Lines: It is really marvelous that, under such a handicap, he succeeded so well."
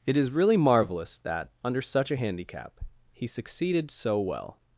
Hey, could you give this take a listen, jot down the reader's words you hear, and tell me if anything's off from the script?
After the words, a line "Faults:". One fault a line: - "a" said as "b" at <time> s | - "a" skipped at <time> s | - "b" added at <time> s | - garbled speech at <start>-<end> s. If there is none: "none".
It is really marvelous that, under such a handicap, he succeeded so well."
Faults:
none